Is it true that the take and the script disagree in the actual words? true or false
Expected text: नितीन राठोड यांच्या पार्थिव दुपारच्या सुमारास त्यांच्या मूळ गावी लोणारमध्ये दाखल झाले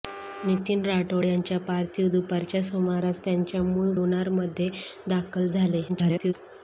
true